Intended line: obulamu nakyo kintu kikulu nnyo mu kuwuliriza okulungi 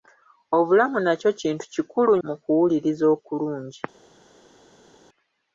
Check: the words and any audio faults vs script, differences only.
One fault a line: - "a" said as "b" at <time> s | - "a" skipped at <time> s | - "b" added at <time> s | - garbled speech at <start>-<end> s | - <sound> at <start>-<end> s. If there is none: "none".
- "nnyo" skipped at 2.1 s